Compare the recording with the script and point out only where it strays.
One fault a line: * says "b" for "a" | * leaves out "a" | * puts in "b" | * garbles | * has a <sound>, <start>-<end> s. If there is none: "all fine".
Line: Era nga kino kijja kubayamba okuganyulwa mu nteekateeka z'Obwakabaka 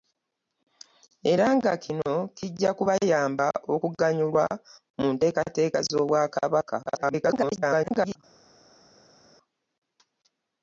* garbles